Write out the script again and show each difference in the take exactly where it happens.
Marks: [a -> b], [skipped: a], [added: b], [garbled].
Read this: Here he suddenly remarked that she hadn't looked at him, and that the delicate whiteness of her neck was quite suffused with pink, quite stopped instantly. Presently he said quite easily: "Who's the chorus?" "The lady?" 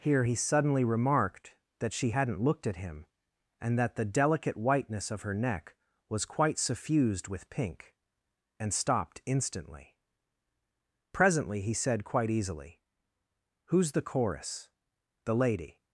Here he suddenly remarked that she hadn't looked at him, and that the delicate whiteness of her neck was quite suffused with pink, [quite -> and] stopped instantly. Presently he said quite easily: "Who's the chorus?" "The lady?"